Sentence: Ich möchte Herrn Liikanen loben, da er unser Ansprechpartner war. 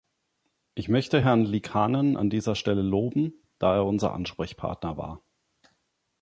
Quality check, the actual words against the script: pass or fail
fail